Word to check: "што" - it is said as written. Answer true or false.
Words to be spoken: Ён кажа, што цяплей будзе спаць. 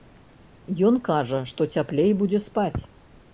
true